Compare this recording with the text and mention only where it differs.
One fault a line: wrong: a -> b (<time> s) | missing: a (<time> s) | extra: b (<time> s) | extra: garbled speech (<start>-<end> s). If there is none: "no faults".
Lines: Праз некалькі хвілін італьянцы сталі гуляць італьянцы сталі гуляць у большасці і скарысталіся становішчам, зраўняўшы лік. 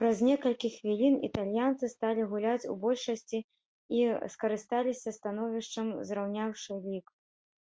missing: італьянцы сталі гуляць (2.7 s)